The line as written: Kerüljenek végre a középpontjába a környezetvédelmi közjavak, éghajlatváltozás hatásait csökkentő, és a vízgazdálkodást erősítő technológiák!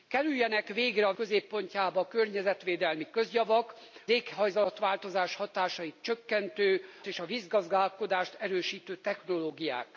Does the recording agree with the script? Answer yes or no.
yes